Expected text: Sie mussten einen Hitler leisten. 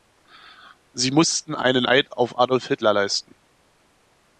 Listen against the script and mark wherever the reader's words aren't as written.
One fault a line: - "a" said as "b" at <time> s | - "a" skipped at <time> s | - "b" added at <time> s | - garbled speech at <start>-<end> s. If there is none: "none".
- "Eid auf Adolf" added at 1.8 s